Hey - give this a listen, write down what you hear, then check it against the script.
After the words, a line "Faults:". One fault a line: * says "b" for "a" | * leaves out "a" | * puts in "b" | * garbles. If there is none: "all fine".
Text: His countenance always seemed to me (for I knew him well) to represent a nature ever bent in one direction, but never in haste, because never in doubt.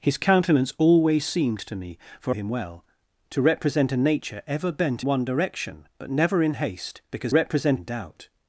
His countenance always seemed to me (for him well) to represent a nature ever bent one direction, but never in haste, because represent in doubt.
Faults:
* leaves out "I knew"
* leaves out "in"
* says "represent" for "never"